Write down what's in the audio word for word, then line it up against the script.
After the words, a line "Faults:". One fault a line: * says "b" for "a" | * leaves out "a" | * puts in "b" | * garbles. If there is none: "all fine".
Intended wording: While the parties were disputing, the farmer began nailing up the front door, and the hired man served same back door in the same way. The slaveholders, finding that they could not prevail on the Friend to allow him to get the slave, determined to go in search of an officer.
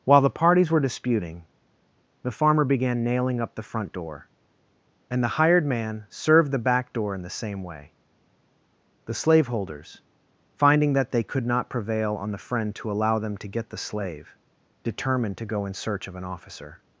While the parties were disputing, the farmer began nailing up the front door, and the hired man served the back door in the same way. The slaveholders, finding that they could not prevail on the Friend to allow them to get the slave, determined to go in search of an officer.
Faults:
* says "the" for "same"
* says "them" for "him"